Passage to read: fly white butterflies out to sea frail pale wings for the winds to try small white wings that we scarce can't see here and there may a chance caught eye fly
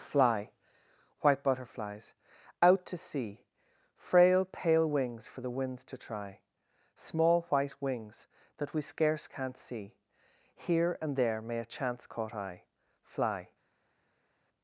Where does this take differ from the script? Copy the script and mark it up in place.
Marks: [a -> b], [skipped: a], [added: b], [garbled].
fly white butterflies out to sea frail pale wings for the winds to try small white wings that we scarce can't see here and there may a chance caught eye fly